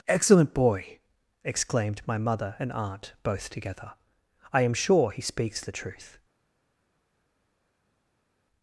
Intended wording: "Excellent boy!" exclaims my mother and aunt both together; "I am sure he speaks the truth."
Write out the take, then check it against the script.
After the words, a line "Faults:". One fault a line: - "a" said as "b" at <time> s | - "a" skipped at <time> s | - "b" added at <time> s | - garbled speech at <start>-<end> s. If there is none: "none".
"Excellent boy!" exclaimed my mother and aunt both together; "I am sure he speaks the truth."
Faults:
- "exclaims" said as "exclaimed" at 1.4 s